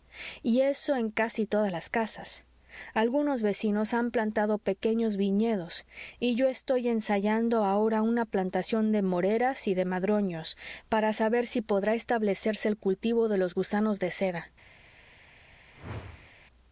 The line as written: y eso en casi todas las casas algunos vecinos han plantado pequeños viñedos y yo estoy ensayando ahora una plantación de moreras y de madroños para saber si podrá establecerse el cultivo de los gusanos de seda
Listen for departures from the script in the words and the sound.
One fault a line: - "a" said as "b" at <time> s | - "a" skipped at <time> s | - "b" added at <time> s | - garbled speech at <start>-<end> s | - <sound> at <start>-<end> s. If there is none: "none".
- whoosh at 15.7-16.3 s